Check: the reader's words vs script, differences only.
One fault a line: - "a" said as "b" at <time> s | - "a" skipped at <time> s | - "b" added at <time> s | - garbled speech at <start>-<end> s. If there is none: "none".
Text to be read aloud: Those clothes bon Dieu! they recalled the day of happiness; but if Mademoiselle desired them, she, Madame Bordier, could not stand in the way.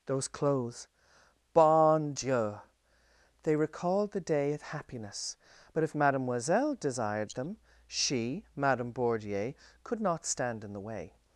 none